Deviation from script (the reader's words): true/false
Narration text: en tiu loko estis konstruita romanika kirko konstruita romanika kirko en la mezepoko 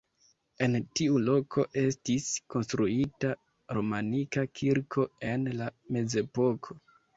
true